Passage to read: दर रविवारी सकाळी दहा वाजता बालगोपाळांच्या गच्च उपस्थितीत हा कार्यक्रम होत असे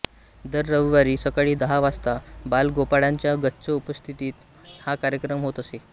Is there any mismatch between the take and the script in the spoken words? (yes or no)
no